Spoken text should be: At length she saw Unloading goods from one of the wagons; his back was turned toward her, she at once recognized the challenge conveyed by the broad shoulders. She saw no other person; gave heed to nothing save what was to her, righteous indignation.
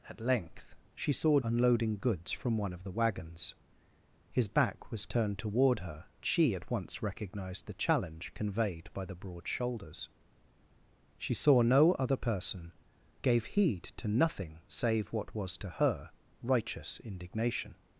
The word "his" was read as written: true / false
true